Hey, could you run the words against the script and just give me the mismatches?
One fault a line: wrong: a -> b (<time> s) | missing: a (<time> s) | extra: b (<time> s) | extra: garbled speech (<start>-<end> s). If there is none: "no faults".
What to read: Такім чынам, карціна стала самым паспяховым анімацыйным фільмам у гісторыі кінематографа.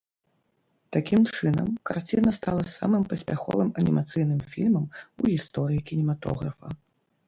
no faults